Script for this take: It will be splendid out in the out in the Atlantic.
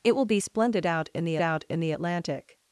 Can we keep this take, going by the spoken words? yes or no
yes